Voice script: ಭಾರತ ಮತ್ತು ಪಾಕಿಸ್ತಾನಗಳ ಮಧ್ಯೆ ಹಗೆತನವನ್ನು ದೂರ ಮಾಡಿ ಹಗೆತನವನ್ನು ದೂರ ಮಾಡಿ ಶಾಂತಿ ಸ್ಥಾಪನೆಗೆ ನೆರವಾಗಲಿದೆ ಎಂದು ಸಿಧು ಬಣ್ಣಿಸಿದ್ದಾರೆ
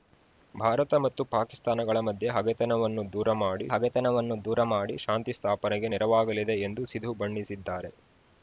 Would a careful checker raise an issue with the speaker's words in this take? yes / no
no